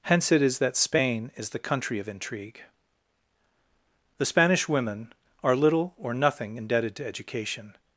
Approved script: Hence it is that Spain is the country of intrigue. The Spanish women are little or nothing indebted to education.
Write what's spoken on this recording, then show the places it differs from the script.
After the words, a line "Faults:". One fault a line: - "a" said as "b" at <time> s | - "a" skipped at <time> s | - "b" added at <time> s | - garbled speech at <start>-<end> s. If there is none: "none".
Hence it is that Spain is the country of intrigue. The Spanish women are little or nothing indebted to education.
Faults:
none